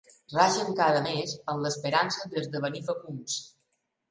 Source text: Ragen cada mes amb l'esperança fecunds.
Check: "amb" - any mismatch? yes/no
no